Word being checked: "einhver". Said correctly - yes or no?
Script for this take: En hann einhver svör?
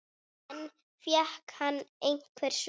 yes